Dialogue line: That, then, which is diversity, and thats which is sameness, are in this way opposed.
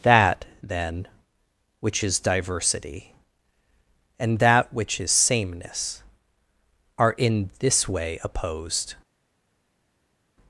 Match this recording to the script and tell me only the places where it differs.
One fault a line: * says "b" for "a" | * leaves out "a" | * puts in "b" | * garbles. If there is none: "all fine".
* says "that" for "thats"